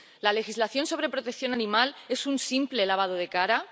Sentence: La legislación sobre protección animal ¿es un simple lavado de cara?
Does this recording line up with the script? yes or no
yes